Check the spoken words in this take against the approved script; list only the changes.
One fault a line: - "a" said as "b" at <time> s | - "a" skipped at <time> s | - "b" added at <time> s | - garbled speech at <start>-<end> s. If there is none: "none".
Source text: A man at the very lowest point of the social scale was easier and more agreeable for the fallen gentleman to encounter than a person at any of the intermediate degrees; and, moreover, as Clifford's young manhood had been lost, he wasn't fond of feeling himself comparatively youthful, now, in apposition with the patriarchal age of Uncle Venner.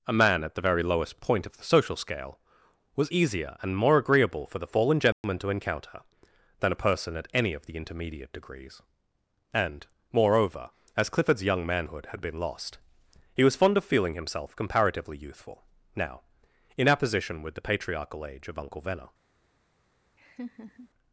- "wasn't" said as "was" at 13.4 s